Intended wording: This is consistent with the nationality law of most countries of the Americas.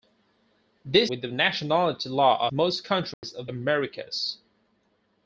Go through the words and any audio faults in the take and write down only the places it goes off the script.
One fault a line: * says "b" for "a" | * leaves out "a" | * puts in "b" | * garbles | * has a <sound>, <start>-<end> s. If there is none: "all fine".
* leaves out "is consistent"
* leaves out "of"
* has a dropout, 3.1-3.2 s
* leaves out "the"